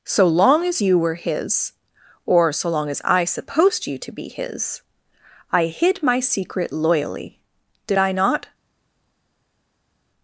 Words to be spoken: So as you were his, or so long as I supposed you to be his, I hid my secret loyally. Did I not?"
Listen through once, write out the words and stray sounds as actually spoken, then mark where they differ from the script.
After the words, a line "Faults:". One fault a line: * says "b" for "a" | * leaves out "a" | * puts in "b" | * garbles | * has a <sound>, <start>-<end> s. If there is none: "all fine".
So long as you were his, or so long as I supposed you to be his, I hid my secret loyally. Did I not?"
Faults:
* puts in "long"